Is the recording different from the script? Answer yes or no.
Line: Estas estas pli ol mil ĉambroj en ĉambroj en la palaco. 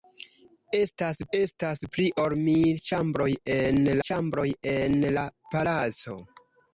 no